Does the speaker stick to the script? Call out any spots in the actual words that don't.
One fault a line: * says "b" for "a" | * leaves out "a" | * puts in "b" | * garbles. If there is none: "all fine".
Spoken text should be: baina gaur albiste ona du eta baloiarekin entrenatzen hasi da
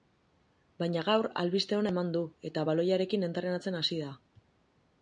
* puts in "eman"